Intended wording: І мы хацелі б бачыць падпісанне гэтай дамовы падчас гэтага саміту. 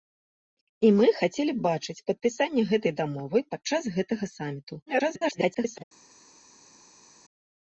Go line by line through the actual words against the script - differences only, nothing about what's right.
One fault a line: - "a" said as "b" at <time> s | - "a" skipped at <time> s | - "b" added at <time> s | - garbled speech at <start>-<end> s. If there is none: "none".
- garbled speech at 4.9-5.8 s